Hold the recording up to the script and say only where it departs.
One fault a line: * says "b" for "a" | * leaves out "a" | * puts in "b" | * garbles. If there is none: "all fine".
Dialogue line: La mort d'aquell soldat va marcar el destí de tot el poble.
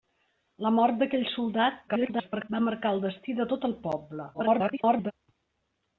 * garbles
* garbles